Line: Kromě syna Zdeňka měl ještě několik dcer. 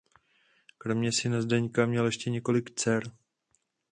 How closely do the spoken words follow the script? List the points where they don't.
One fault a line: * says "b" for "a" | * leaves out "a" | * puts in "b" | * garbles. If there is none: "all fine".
all fine